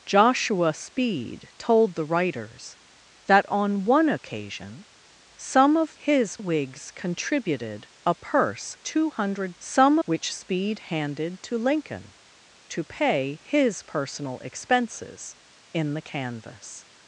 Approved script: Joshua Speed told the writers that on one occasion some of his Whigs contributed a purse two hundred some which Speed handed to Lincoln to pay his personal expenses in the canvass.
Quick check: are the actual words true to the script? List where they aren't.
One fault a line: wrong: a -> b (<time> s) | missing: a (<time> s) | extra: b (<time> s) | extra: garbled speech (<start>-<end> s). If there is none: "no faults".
no faults